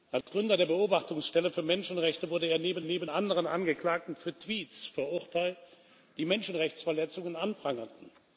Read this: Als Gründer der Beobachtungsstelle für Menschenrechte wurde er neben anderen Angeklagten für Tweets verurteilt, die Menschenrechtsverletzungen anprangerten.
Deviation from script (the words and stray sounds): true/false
true